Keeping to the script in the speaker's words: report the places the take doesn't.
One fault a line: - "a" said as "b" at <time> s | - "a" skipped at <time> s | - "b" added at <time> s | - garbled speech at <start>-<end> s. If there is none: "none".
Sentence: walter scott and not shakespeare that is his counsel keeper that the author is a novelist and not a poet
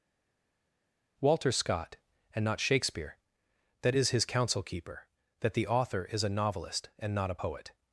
none